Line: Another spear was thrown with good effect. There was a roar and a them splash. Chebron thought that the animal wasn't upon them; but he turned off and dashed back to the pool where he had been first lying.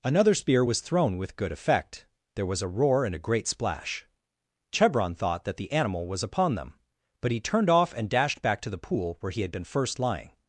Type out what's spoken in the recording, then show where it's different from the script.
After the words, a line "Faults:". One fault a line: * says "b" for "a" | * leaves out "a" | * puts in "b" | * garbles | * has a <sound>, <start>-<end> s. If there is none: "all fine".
Another spear was thrown with good effect. There was a roar and a great splash. Chebron thought that the animal was upon them; but he turned off and dashed back to the pool where he had been first lying.
Faults:
* says "great" for "them"
* says "was" for "wasn't"